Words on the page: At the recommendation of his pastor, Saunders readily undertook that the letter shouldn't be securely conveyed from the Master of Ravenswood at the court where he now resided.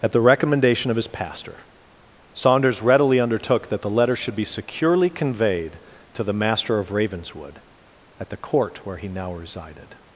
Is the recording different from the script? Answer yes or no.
yes